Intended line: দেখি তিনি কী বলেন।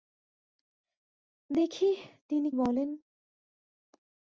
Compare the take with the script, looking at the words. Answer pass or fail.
fail